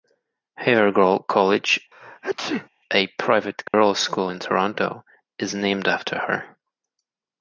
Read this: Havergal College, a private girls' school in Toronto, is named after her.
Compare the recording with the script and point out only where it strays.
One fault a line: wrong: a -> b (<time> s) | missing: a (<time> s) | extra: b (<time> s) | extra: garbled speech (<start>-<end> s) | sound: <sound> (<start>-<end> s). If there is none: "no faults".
sound: sneeze (1.9-2.7 s)
sound: dropout (3.7-3.7 s)